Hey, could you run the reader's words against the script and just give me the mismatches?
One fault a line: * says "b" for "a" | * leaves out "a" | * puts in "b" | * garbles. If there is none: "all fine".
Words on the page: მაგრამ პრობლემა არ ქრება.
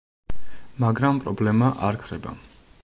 all fine